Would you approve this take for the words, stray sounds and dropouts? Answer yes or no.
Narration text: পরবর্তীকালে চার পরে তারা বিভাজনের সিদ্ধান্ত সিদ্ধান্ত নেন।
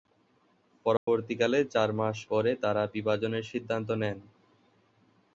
no